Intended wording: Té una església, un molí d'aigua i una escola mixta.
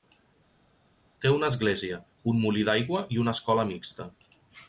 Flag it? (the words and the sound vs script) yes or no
no